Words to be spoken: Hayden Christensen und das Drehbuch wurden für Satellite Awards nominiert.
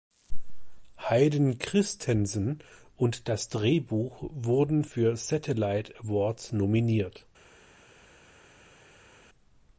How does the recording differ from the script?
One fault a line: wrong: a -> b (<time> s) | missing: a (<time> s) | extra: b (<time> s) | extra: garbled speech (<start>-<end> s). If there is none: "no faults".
no faults